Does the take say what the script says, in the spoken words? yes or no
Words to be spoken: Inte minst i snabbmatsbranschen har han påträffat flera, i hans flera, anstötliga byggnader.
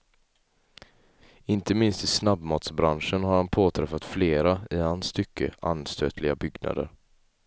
no